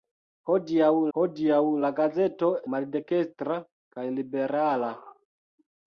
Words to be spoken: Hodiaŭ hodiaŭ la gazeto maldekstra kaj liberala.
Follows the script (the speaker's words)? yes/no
yes